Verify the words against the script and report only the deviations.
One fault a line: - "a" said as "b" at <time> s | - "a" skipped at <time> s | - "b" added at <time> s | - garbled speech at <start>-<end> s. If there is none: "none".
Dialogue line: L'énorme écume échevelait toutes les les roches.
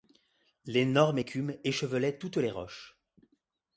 - "les" skipped at 2.5 s